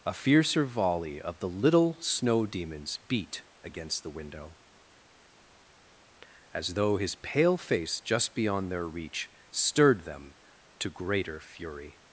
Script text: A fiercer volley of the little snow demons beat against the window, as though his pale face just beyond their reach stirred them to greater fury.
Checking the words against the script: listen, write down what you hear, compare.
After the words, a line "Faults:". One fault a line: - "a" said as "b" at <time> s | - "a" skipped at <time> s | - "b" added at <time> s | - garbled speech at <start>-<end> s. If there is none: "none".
A fiercer volley of the little snow demons beat against the window, as though his pale face just beyond their reach stirred them to greater fury.
Faults:
none